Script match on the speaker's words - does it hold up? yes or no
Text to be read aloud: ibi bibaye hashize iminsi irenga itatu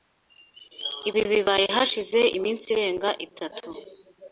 yes